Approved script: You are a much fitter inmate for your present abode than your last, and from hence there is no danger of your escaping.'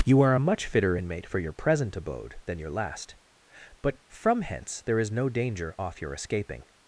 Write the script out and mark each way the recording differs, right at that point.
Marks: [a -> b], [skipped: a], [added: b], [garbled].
You are a much fitter inmate for your present abode than your last, [and -> but] from hence there is no danger [of -> off] your escaping.'